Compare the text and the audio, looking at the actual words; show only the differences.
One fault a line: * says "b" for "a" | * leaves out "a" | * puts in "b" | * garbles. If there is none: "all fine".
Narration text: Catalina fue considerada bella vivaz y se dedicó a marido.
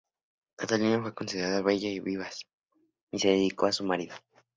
* puts in "y"
* puts in "su"